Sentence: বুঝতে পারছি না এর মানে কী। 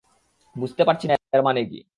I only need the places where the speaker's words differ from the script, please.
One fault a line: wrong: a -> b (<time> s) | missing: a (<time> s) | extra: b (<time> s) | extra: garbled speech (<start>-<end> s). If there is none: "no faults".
no faults